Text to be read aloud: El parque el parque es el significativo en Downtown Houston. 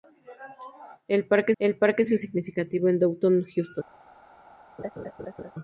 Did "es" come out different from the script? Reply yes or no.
no